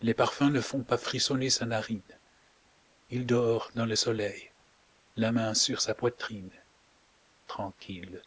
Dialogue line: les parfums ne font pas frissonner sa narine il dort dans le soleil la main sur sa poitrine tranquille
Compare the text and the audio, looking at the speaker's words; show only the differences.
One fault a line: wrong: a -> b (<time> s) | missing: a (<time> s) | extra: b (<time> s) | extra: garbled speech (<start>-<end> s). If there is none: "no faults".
no faults